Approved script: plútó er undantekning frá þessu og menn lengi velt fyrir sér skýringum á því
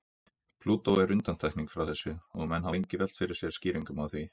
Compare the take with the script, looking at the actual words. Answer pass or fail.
pass